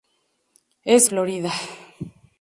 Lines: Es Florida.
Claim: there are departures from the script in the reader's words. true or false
false